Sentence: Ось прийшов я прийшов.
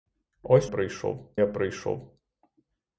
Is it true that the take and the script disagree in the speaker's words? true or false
false